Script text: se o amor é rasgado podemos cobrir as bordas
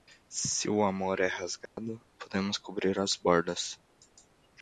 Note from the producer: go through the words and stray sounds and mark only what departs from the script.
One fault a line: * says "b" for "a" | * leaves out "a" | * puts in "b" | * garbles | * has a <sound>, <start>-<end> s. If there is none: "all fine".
* has a dropout, 1.7-1.8 s